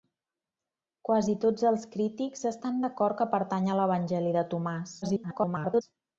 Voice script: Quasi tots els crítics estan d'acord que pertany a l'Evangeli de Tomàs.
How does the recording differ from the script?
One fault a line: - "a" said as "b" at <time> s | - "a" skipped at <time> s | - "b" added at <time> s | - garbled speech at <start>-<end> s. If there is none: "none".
- garbled speech at 5.0-5.8 s